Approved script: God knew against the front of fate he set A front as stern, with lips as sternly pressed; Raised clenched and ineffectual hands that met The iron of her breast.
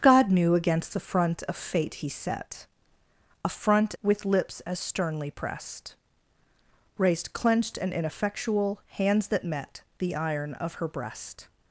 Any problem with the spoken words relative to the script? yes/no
yes